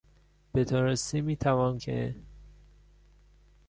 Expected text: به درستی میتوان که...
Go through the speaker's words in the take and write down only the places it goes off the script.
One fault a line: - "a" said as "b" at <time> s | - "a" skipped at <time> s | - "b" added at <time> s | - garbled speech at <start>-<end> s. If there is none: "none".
none